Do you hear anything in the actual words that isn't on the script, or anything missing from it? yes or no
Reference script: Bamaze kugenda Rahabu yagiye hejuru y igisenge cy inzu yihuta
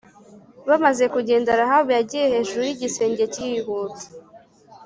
yes